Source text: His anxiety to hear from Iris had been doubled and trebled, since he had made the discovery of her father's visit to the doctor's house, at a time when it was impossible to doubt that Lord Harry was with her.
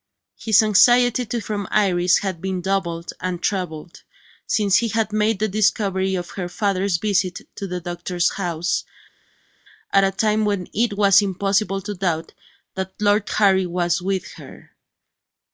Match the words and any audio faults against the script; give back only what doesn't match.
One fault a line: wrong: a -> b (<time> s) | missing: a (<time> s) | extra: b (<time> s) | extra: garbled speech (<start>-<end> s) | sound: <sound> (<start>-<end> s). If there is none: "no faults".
missing: hear (1.4 s)